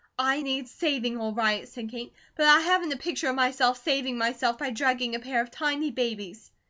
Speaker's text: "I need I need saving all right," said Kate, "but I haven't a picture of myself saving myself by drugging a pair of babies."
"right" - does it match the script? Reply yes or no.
yes